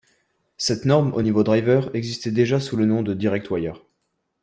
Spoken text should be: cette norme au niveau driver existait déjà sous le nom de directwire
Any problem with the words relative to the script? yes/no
no